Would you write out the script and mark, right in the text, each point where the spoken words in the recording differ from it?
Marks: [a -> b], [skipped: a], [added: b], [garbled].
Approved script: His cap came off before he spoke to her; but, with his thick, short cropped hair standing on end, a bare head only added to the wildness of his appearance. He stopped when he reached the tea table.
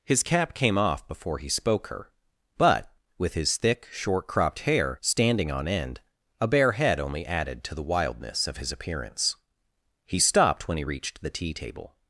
His cap came off before he spoke [skipped: to] her; but, with his thick, short cropped hair standing on end, a bare head only added to the wildness of his appearance. He stopped when he reached the tea table.